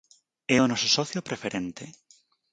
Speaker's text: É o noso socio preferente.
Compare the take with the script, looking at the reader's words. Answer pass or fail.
pass